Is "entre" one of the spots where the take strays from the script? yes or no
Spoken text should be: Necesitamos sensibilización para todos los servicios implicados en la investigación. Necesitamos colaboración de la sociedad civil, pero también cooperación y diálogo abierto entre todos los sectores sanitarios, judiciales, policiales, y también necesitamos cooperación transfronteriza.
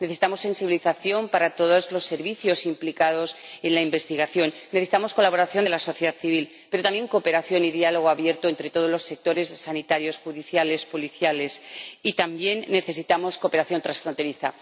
no